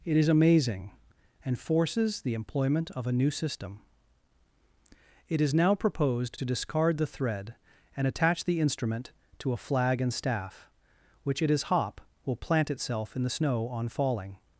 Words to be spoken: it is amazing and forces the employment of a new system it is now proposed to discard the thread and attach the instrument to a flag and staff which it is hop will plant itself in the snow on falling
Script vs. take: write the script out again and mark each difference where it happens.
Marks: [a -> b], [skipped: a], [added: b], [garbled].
it is amazing and forces the employment of a new system it is now proposed to discard the thread and attach the instrument to a flag and staff which it is hop will plant itself in the snow on falling